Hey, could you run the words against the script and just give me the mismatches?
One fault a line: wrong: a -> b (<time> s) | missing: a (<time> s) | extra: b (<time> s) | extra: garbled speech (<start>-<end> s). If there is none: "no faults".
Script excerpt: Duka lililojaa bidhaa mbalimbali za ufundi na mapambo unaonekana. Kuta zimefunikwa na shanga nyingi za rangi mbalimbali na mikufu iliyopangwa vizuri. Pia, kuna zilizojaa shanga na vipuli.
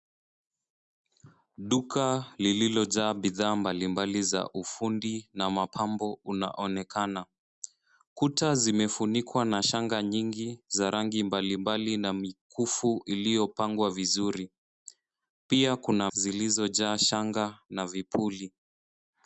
no faults